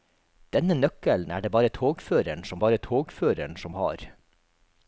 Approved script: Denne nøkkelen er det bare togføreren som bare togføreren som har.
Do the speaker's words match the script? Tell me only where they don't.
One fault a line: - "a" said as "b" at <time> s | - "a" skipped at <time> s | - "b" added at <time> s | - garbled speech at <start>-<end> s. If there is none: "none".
none